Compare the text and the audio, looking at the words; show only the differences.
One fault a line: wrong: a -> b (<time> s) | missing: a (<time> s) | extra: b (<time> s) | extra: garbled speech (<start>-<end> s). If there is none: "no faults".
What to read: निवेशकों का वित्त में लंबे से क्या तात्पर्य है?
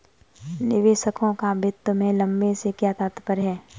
no faults